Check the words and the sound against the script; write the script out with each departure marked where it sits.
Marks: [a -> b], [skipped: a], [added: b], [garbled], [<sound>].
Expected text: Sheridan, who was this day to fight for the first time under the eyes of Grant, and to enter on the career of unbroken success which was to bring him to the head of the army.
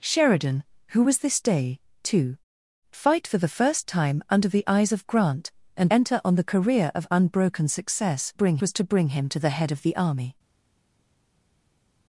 Sheridan, who was this day to fight for the first time under the eyes of Grant, and [skipped: to] enter on the career of unbroken success [which -> bring] was to bring him to the head of the army.